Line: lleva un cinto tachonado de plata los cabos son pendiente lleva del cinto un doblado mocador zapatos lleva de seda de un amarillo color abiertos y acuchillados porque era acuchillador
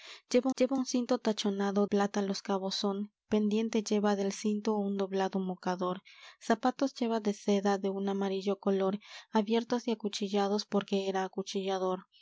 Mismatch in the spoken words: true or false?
true